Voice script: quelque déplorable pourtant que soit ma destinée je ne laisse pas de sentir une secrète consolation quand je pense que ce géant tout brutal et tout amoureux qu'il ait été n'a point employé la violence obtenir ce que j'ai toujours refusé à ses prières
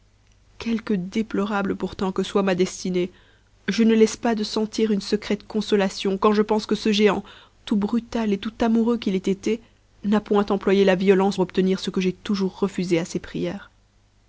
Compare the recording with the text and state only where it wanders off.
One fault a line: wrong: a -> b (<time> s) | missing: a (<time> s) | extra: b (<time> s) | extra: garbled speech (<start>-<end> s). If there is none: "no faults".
no faults